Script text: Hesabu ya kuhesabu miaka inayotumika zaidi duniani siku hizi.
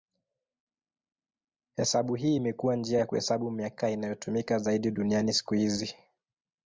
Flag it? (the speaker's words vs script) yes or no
yes